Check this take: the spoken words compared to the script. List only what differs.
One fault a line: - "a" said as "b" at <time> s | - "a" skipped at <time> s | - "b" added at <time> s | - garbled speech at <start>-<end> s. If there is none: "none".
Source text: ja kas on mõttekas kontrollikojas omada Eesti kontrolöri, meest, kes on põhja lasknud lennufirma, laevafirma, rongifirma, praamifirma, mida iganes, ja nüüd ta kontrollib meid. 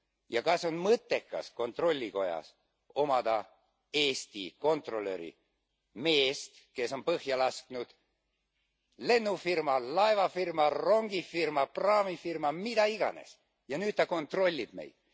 none